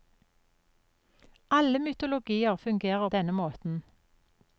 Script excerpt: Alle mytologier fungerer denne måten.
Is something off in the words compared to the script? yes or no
no